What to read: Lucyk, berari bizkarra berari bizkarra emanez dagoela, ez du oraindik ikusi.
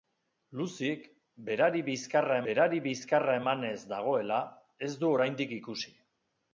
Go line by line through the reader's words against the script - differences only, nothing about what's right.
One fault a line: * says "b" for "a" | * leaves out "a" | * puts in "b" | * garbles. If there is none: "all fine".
all fine